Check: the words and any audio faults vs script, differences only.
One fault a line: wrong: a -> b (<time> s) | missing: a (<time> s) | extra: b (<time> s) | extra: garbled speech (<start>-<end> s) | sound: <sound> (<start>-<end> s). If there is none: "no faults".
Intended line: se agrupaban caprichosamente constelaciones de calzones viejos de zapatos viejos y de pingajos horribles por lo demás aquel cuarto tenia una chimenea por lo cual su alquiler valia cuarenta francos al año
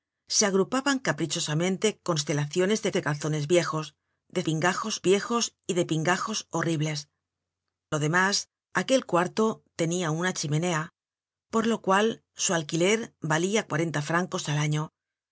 extra: de (2.9 s)
wrong: zapatos -> pingajos (4.4 s)
missing: por (7.1 s)